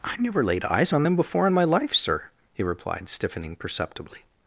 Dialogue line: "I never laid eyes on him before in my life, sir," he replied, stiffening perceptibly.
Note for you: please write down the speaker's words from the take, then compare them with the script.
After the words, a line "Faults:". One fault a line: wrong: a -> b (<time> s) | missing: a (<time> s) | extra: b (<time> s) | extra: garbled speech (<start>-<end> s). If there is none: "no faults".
"I never laid eyes on them before in my life, sir," he replied, stiffening perceptibly.
Faults:
wrong: him -> them (1.0 s)